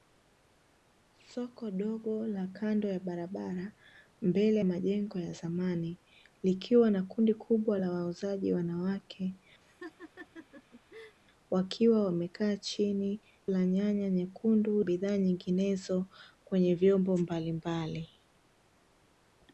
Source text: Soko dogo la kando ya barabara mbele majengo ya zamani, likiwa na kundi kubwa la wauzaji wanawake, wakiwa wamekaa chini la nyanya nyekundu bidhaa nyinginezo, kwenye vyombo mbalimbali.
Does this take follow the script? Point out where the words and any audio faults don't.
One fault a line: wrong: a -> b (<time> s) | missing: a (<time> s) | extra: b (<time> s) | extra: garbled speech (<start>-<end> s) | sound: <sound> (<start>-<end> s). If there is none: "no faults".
sound: laugh (9.6-11.2 s)